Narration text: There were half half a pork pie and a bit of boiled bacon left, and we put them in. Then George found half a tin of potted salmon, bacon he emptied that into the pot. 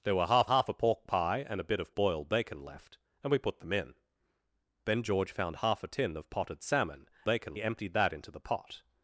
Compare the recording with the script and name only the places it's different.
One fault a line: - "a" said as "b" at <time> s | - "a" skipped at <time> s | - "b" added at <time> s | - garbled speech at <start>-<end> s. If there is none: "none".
none